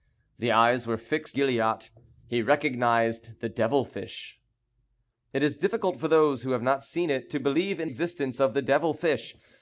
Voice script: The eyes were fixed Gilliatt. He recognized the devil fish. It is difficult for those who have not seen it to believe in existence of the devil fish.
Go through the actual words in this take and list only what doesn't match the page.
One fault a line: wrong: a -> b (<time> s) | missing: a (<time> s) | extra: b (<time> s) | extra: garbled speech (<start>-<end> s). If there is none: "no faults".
no faults